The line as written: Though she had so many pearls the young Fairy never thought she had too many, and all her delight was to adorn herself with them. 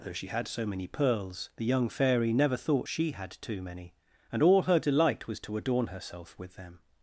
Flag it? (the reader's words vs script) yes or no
no